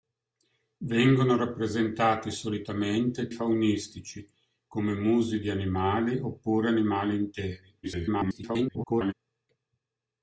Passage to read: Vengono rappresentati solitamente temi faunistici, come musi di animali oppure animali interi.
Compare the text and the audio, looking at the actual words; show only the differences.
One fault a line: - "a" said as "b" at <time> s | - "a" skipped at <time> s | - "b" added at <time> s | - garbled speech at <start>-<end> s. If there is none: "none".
- "temi" skipped at 3.3 s
- garbled speech at 7.8-9.1 s